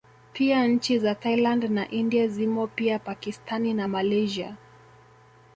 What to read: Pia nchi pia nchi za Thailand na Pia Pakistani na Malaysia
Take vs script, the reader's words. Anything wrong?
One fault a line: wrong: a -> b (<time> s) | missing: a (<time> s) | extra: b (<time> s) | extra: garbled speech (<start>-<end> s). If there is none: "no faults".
missing: pia nchi (1.0 s)
extra: India zimo (1.9 s)